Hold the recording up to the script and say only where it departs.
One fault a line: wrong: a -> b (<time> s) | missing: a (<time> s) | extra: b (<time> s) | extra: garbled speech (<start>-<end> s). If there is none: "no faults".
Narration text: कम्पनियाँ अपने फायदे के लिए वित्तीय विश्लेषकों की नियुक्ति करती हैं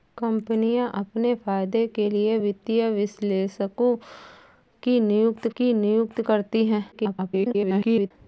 extra: की नियुक्ति (5.6 s)
extra: garbled speech (6.9-8.1 s)